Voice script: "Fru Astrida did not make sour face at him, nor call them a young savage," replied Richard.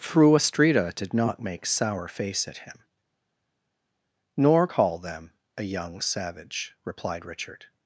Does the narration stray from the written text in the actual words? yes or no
no